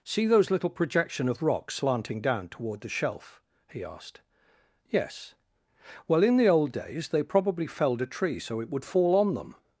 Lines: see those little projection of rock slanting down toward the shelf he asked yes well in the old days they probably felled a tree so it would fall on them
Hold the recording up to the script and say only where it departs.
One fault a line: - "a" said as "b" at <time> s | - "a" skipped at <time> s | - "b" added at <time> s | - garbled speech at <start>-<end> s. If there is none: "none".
none